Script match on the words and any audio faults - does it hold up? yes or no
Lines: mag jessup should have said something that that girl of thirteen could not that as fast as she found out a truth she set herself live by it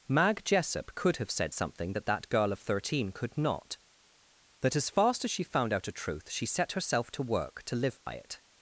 no